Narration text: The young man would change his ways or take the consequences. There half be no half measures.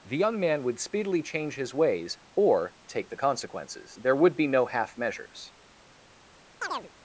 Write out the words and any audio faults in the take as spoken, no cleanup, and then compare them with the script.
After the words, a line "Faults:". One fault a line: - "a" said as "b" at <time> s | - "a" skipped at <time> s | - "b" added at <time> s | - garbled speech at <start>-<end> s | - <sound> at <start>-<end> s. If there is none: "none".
The young man would speedily change his ways or take the consequences. There would be no half measures.
Faults:
- "speedily" added at 0.8 s
- "half" said as "would" at 4.2 s
- chirp at 6.6-6.9 s